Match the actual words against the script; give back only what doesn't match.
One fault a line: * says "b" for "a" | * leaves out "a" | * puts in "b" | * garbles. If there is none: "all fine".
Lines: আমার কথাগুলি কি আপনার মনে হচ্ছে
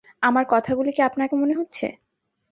all fine